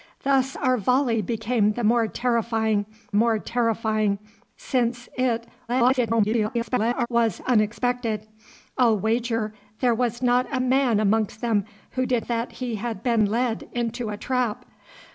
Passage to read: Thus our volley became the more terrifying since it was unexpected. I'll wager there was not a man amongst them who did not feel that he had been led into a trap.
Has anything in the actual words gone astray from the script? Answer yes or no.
yes